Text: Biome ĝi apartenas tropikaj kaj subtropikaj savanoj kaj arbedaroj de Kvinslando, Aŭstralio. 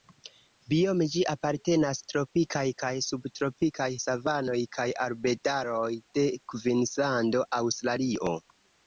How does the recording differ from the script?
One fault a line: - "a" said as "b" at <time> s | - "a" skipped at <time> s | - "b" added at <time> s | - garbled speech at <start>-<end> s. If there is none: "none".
none